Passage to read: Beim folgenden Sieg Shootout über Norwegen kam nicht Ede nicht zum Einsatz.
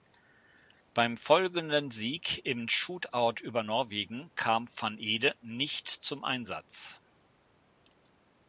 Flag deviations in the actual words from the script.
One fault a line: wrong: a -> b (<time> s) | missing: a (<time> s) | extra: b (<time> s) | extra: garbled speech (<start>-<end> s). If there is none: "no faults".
extra: im (2.4 s)
wrong: nicht -> van (4.8 s)